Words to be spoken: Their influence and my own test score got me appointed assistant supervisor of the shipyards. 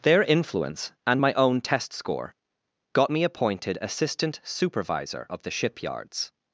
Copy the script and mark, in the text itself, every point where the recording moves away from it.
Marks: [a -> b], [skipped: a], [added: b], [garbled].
Their influence and my own test score got me appointed assistant supervisor of the shipyards.